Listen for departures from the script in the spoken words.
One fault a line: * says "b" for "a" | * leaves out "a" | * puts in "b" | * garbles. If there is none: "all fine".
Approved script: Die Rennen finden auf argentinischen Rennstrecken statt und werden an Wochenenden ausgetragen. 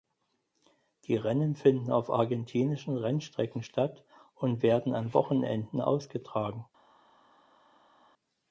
all fine